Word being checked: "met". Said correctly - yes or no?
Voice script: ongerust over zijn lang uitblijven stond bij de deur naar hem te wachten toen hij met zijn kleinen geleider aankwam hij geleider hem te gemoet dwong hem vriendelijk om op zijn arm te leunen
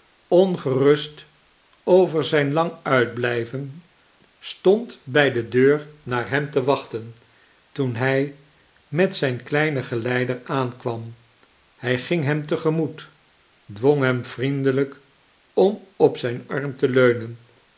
yes